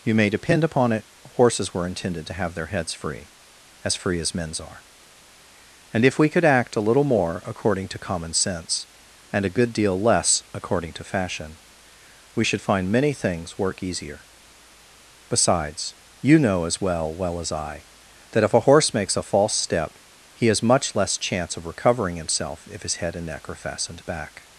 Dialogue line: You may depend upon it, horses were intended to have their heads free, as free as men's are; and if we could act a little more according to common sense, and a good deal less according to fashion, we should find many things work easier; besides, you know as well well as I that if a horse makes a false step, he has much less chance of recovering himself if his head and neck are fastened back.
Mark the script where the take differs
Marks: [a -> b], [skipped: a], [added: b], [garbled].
You may depend upon it, horses were intended to have their heads free, as free as men's are; and if we could act a little more according to common sense, and a good deal less according to fashion, we should find many things work easier; besides, you know as well well as I that if a horse makes a false step, he has much less chance of recovering himself if his head and neck are fastened back.